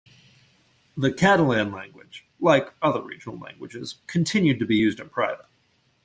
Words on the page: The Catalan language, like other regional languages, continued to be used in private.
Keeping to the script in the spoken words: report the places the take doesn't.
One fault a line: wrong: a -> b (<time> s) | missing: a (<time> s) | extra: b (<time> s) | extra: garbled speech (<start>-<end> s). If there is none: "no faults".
no faults